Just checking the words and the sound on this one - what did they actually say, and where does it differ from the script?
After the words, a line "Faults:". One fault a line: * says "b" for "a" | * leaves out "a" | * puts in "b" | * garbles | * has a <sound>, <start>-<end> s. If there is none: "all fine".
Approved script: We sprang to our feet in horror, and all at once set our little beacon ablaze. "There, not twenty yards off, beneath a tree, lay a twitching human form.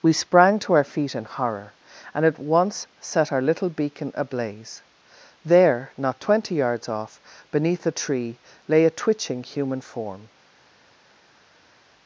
We sprang to our feet in horror, and at once set our little beacon ablaze. "There, not twenty yards off, beneath a tree, lay a twitching human form.
Faults:
* leaves out "all"